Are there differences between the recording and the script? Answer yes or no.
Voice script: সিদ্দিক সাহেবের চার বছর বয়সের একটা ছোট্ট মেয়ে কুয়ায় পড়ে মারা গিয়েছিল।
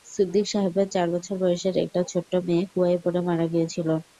no